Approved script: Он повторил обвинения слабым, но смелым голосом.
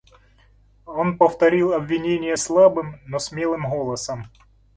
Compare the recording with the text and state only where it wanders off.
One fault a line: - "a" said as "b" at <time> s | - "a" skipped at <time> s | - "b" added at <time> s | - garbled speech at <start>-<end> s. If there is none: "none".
none